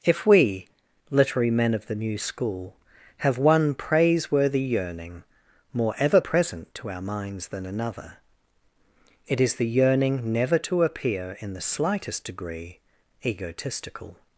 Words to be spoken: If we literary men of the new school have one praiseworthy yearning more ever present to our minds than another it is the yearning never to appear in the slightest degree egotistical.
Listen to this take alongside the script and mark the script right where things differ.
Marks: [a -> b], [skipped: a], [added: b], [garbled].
If we literary men of the new school have one praiseworthy yearning more ever present to our minds than another it is the yearning never to appear in the slightest degree egotistical.